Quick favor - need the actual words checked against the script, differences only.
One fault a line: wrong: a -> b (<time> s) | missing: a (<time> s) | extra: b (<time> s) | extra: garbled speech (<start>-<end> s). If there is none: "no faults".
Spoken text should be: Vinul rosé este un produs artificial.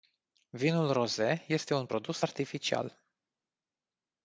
no faults